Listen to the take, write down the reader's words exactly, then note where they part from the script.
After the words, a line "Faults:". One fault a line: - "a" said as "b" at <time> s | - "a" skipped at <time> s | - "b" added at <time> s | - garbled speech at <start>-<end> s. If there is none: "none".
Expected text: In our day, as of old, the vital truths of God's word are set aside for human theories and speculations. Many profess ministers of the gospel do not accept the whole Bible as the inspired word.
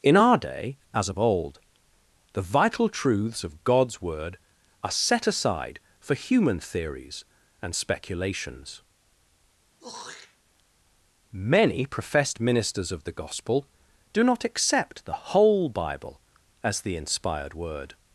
In our day, as of old, the vital truths of God's word are set aside for human theories and speculations. Many professed ministers of the gospel do not accept the whole Bible as the inspired word.
Faults:
- "profess" said as "professed" at 11.8 s